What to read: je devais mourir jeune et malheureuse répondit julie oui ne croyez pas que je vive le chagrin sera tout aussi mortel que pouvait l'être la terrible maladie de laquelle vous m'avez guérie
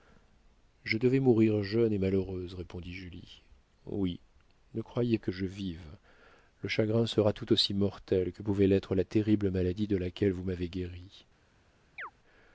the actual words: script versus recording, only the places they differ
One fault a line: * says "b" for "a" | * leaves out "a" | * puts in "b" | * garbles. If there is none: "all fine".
* leaves out "pas"